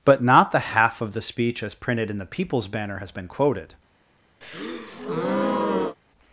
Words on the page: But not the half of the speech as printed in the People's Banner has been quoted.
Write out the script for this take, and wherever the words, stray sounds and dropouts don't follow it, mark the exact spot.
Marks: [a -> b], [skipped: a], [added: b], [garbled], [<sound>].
But not the half of the speech as printed in the People's Banner has been quoted. [breath]